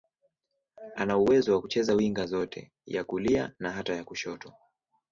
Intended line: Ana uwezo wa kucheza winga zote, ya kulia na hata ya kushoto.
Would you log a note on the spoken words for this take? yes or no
no